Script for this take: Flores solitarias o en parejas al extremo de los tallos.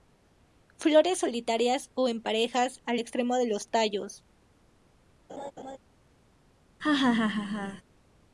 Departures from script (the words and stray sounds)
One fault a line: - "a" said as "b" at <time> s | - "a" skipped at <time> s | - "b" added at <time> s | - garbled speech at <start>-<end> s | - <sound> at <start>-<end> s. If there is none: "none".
- laugh at 5.3-5.8 s
- laugh at 6.8-7.8 s